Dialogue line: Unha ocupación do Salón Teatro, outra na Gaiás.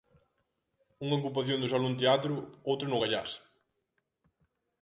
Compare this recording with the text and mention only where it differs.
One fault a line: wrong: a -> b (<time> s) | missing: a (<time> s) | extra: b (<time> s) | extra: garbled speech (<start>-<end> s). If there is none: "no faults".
wrong: na -> no (2.9 s)